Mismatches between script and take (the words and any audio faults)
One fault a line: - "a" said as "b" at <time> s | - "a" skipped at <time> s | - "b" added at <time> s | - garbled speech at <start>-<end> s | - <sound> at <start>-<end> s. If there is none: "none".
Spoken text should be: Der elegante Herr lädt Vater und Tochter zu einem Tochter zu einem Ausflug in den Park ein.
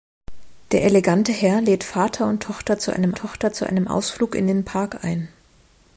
none